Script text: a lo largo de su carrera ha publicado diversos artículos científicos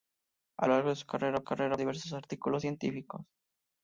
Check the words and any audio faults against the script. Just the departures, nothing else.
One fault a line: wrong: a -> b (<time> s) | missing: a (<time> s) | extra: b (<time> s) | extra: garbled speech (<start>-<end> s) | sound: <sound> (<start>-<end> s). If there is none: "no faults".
missing: lo (0.7 s)
wrong: publicado -> carrera (1.4 s)